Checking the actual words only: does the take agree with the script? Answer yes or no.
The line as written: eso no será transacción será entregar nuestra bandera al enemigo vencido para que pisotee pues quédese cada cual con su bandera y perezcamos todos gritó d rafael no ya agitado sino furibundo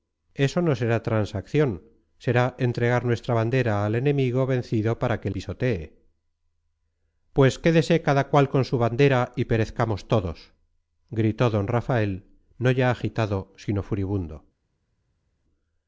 yes